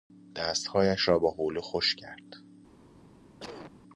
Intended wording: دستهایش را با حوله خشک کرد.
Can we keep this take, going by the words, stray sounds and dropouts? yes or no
no